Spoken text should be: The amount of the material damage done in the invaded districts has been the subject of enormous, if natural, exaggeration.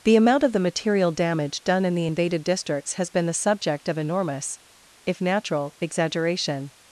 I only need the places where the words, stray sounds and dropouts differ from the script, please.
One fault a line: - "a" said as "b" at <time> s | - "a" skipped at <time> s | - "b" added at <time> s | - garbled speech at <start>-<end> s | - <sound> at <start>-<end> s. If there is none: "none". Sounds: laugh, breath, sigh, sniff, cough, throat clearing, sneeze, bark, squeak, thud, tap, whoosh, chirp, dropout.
none